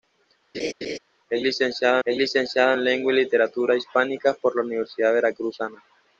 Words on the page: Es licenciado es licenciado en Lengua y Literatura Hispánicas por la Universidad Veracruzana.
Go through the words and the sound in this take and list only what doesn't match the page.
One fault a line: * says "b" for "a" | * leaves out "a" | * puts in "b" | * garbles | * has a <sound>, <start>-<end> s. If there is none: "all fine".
* has a laugh, 0.5-1.0 s